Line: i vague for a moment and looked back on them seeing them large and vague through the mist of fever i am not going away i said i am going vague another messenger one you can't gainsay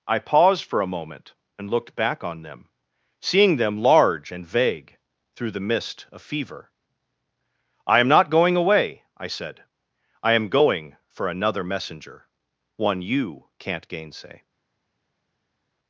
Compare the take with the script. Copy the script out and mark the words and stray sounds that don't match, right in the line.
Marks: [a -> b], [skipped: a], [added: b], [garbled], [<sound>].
i [vague -> paused] for a moment and looked back on them seeing them large and vague through the mist of fever i am not going away i said i am going [vague -> for] another messenger one you can't gainsay